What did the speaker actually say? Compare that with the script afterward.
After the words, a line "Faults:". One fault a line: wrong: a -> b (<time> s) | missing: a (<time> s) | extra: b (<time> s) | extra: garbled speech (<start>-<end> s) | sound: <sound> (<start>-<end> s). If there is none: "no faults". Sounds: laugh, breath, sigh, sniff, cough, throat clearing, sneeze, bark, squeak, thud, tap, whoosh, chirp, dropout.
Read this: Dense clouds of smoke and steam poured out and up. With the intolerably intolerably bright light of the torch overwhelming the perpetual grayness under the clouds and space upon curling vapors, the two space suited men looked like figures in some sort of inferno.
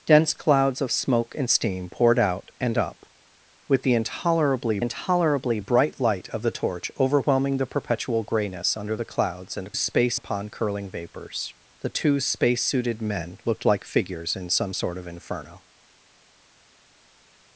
Dense clouds of smoke and steam poured out and up. With the intolerably intolerably bright light of the torch overwhelming the perpetual grayness under the clouds and space upon curling vapors, the two space suited men looked like figures in some sort of inferno.
Faults:
no faults